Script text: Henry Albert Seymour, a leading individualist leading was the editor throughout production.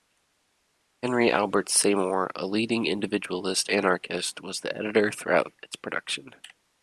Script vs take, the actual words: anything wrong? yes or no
yes